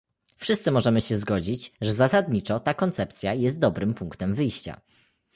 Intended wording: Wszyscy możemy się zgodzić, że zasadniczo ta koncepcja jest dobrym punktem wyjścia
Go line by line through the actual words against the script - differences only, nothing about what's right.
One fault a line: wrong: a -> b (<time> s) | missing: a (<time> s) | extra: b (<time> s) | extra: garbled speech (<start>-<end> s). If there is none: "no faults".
no faults